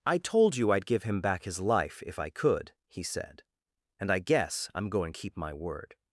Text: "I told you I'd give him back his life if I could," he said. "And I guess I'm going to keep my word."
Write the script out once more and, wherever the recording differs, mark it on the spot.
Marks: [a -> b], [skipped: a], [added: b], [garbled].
"I told you I'd give him back his life if I could," he said. "And I guess I'm going [skipped: to] keep my word."